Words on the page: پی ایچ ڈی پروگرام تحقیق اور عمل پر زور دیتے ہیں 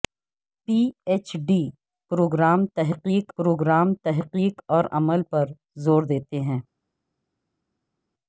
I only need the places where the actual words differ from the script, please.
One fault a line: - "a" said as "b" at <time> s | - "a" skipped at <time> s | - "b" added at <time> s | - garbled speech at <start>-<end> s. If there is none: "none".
- "پروگرام تحقیق" added at 3.4 s